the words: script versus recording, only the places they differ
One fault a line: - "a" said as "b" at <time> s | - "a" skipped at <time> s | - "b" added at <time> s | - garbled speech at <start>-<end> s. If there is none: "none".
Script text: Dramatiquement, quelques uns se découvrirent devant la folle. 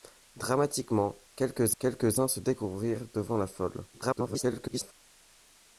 - "quelques" added at 1.8 s
- garbled speech at 3.9-4.9 s